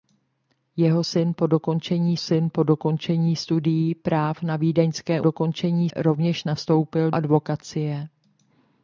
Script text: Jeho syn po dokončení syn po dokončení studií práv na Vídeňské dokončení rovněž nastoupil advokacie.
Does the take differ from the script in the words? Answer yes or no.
no